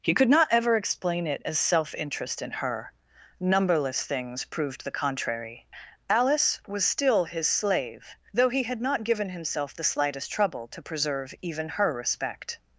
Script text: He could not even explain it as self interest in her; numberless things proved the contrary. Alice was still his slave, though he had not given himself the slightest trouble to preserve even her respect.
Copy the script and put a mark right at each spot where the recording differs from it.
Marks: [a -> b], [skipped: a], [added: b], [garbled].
He could not [even -> ever] explain it as self interest in her; numberless things proved the contrary. Alice was still his slave, though he had not given himself the slightest trouble to preserve even her respect.